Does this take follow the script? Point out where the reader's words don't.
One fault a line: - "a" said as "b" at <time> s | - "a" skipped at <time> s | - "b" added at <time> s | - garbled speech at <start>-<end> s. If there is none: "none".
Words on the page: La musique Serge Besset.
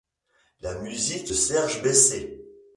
none